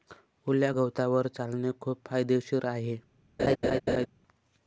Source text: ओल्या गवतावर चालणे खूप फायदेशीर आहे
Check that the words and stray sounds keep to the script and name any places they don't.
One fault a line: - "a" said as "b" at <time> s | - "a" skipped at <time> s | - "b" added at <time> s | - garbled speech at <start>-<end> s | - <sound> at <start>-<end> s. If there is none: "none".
- laugh at 3.4-4.1 s